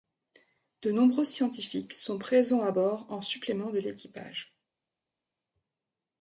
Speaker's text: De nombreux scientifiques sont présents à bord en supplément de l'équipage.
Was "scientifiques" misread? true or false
false